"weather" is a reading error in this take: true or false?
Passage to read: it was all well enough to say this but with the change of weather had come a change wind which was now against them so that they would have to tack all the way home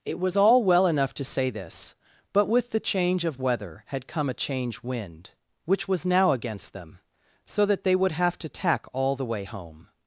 false